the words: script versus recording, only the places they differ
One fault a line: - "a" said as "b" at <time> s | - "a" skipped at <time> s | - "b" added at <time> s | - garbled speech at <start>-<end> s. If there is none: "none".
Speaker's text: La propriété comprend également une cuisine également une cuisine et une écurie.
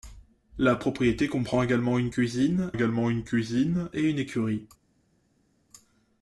none